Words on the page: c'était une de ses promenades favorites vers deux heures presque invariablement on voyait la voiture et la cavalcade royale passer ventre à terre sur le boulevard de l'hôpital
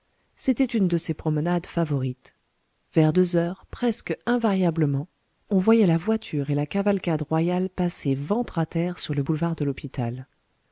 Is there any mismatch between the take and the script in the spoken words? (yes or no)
no